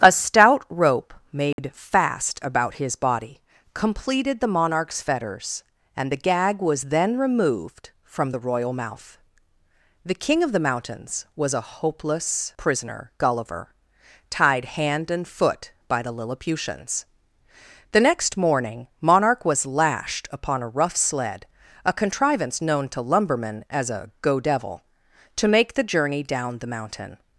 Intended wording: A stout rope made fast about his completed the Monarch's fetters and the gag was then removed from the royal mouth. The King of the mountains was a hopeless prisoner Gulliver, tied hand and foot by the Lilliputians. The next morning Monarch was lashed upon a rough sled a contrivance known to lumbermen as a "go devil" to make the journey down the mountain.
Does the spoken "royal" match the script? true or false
true